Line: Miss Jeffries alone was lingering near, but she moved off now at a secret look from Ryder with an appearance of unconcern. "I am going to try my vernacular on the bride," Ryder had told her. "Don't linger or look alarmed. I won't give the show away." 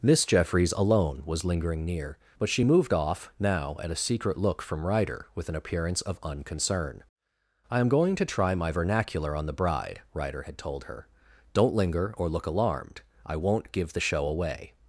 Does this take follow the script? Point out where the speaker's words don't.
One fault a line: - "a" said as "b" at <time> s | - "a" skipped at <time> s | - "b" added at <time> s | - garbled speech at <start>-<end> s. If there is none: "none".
none